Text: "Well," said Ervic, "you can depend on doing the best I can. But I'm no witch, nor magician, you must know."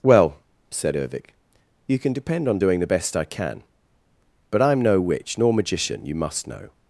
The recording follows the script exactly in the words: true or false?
true